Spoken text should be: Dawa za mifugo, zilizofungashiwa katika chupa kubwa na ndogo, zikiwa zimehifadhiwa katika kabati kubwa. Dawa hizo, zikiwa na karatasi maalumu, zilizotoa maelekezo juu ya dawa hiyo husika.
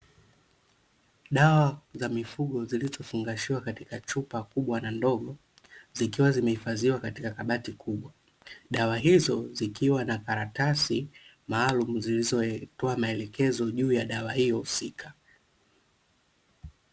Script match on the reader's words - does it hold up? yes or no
yes